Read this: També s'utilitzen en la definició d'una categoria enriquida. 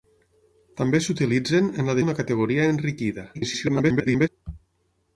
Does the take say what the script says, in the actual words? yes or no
no